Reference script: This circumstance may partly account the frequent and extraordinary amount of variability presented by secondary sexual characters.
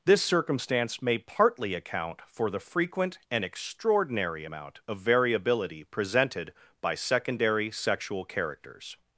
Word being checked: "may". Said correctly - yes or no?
yes